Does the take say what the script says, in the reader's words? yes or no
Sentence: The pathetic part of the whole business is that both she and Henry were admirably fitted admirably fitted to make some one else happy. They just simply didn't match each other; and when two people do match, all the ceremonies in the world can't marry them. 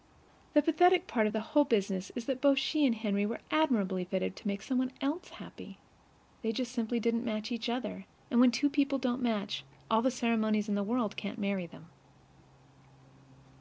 no